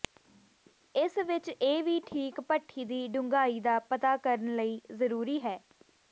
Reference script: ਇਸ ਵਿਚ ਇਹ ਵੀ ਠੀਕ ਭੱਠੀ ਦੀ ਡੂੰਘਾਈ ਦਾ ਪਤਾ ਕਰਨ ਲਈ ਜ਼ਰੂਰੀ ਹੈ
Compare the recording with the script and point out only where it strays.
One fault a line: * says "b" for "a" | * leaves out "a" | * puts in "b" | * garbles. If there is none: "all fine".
all fine